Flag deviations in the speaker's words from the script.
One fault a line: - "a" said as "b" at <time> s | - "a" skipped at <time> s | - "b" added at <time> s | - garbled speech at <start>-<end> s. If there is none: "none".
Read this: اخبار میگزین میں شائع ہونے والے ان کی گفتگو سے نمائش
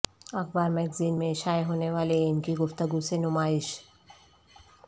none